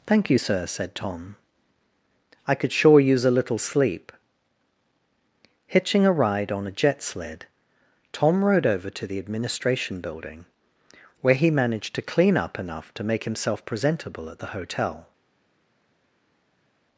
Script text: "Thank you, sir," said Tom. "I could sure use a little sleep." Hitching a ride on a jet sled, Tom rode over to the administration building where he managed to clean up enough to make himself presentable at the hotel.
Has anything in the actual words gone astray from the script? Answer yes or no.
no